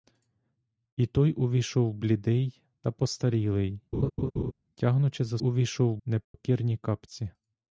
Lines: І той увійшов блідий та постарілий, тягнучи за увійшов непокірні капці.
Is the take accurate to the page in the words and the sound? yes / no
no